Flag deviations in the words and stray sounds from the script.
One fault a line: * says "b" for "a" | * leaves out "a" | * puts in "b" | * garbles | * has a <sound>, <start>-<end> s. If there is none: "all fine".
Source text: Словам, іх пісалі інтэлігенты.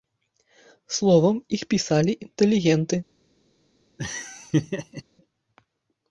* has a laugh, 4.0-5.0 s